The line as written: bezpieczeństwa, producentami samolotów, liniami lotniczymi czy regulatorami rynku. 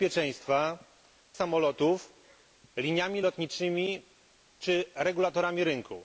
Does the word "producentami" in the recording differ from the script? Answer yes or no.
yes